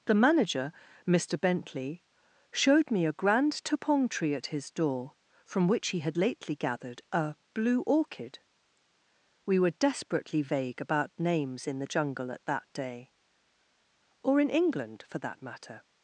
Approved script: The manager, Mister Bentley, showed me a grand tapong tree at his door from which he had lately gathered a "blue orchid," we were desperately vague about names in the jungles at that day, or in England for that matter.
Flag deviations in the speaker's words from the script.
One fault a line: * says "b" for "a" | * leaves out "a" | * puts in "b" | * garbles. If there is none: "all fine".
* says "jungle" for "jungles"